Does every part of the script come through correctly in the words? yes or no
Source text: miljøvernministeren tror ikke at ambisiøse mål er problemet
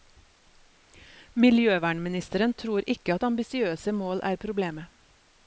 yes